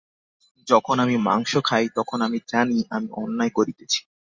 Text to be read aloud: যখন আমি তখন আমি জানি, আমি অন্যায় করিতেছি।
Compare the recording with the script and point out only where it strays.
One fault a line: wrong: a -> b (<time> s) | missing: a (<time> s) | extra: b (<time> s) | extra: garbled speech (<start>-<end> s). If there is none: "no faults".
extra: মাংস খাই (1.2 s)